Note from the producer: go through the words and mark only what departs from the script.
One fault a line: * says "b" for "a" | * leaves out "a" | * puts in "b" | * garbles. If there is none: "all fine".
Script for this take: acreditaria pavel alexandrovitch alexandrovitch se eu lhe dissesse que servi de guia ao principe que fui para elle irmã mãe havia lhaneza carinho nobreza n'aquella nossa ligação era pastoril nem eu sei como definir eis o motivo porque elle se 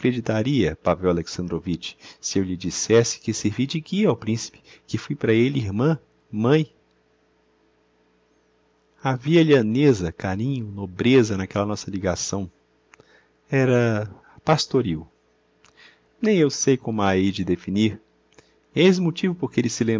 * leaves out "alexandrovitch"
* puts in "a hei de"